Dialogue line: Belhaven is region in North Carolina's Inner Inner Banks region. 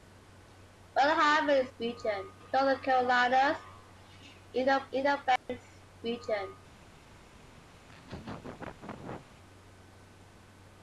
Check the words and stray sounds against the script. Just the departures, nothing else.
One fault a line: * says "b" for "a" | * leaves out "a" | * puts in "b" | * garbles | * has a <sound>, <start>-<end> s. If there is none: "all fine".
* has a dropout, 5.4-5.5 s
* has a laugh, 7.8-9.3 s